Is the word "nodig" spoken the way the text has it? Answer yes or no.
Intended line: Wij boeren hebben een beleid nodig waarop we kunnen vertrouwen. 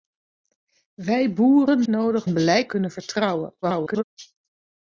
no